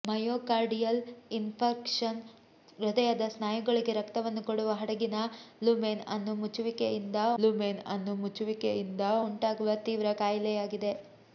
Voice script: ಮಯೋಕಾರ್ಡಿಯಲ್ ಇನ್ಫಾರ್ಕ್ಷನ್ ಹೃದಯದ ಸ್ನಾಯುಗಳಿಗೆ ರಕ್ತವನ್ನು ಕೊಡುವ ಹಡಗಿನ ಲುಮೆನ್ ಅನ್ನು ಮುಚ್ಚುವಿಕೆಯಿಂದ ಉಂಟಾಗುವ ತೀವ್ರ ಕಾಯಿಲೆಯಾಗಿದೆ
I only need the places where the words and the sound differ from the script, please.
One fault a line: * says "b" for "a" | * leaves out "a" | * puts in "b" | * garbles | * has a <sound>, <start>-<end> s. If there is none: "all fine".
* puts in "ಲುಮೆನ್ ಅನ್ನು ಮುಚ್ಚುವಿಕೆಯಿಂದ"